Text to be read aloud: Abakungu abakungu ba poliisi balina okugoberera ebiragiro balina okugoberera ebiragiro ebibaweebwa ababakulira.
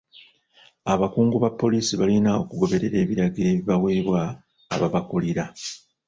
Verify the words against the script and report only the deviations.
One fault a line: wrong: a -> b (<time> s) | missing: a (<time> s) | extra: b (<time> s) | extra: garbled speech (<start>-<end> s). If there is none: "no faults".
missing: abakungu (1.4 s)
missing: balina okugoberera ebiragiro (3.5 s)